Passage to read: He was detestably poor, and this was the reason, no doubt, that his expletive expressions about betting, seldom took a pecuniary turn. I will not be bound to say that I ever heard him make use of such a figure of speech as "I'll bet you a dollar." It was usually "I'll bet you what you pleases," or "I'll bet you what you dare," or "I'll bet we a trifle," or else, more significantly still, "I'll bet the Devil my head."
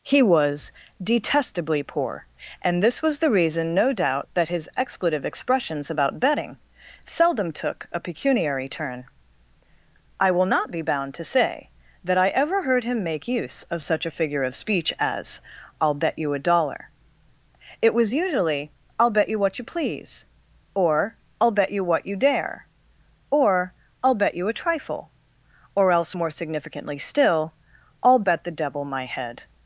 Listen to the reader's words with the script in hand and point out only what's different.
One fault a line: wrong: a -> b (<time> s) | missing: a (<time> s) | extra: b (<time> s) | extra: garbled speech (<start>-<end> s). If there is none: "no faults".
wrong: pleases -> please (19.7 s)
wrong: we -> you (24.3 s)